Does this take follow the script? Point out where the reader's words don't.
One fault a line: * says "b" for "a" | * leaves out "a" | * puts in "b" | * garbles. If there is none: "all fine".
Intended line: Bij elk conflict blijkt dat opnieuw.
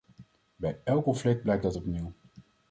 all fine